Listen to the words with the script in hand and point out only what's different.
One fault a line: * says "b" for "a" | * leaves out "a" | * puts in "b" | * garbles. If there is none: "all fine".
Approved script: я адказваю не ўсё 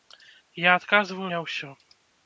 all fine